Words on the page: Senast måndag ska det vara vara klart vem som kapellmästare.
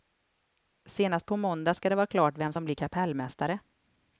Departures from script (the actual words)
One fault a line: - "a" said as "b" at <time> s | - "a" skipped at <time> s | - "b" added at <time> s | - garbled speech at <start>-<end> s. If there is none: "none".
- "på" added at 1.2 s
- "vara" skipped at 2.1 s
- "blir" added at 2.6 s